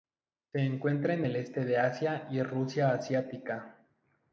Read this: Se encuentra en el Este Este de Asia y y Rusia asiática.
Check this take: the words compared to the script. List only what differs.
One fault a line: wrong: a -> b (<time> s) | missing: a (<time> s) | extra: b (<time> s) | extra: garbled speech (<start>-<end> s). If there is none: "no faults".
missing: Este (1.7 s)
missing: y (2.4 s)